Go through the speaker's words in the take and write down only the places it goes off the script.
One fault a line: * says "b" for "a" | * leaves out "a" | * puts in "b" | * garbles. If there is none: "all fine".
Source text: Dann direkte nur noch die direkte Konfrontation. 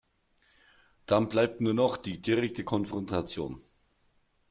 * says "bleibt" for "direkte"